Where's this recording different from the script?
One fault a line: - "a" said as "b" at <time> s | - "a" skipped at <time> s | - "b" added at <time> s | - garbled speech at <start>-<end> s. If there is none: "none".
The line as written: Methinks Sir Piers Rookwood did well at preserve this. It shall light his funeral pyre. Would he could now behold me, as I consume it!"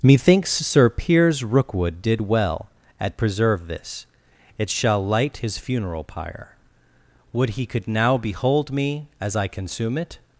none